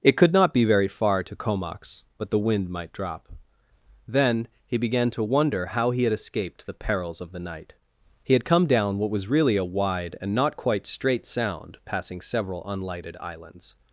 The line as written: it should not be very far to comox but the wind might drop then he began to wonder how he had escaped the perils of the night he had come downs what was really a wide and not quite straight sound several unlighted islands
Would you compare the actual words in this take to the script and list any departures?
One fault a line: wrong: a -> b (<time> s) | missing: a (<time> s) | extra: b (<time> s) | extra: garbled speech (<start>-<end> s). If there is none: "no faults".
wrong: should -> could (0.2 s)
wrong: downs -> down (8.6 s)
extra: passing (11.8 s)